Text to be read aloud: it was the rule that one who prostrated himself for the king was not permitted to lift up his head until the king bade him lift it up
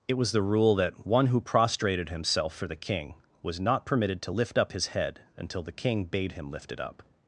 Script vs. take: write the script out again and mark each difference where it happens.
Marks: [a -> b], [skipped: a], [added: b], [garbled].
it was the rule that one who prostrated himself for the king was not permitted to lift up his head until the king bade him lift it up